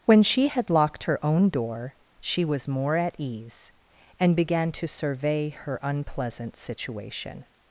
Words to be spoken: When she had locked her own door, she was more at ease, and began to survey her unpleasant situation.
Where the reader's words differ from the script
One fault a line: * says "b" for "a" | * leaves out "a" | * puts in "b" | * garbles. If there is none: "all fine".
all fine